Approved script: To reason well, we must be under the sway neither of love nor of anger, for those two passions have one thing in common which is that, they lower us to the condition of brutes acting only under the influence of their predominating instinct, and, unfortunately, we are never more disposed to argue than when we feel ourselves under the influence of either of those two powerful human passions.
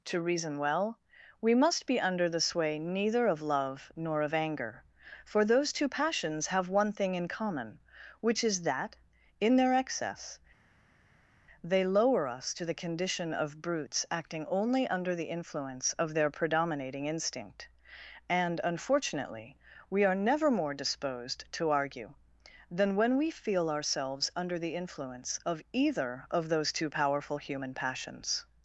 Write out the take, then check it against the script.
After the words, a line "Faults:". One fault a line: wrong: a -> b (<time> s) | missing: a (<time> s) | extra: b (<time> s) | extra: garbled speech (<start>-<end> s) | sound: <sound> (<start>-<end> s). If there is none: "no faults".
To reason well, we must be under the sway neither of love nor of anger, for those two passions have one thing in common which is that, in their excess, they lower us to the condition of brutes acting only under the influence of their predominating instinct, and, unfortunately, we are never more disposed to argue than when we feel ourselves under the influence of either of those two powerful human passions.
Faults:
extra: in their excess (9.4 s)